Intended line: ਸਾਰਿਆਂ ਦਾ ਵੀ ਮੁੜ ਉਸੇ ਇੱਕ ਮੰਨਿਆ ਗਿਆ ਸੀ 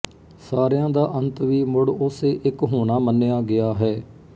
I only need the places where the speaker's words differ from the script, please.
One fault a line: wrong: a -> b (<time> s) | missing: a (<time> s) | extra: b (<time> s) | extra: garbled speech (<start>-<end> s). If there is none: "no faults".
extra: ਅੰਤ (1.1 s)
extra: ਹੋਣਾ (2.6 s)
wrong: ਸੀ -> ਹੈ (3.8 s)